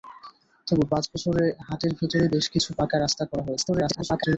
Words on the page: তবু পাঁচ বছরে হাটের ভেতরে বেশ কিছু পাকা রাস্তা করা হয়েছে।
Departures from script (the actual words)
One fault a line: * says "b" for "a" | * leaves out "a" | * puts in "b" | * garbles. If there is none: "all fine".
* garbles